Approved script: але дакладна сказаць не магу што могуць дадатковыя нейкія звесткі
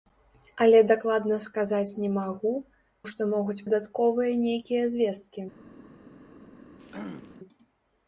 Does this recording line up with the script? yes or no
yes